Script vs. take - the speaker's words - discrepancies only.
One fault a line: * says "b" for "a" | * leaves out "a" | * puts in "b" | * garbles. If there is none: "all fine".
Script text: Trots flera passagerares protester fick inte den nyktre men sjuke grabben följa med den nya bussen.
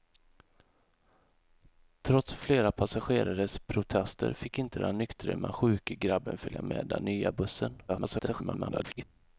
* garbles